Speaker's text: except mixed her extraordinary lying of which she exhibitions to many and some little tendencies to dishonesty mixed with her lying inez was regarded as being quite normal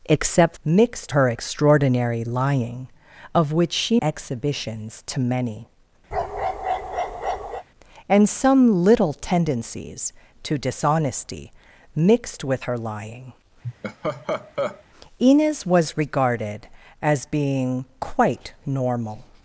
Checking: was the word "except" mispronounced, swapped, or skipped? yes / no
no